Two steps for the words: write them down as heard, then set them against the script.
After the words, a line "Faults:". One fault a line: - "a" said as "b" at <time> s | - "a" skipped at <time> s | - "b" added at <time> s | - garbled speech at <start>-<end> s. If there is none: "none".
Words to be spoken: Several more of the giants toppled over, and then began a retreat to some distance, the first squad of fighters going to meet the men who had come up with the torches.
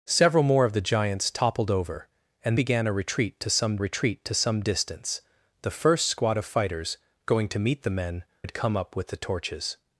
Several more of the giants toppled over, and began a retreat to some retreat to some distance, the first squad of fighters going to meet the men had come up with the torches.
Faults:
- "then" skipped at 2.6 s
- "retreat to some" added at 3.8 s
- "who" skipped at 8.2 s